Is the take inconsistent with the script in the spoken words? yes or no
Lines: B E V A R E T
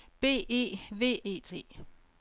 yes